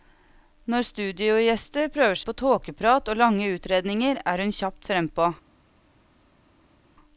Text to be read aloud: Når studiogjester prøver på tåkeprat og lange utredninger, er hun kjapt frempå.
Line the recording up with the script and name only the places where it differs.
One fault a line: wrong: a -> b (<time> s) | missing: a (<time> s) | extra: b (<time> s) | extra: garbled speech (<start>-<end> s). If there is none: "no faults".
no faults